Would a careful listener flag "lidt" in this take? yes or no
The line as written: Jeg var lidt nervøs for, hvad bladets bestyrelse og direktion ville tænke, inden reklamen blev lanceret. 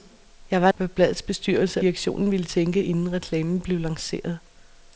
yes